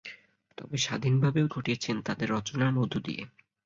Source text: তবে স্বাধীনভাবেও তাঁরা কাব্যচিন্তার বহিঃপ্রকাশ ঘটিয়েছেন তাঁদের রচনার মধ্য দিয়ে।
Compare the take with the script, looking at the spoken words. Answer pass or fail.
fail